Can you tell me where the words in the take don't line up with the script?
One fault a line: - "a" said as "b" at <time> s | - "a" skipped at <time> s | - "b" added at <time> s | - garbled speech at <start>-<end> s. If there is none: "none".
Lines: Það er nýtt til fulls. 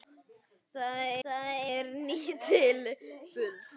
- "það" added at 1.2 s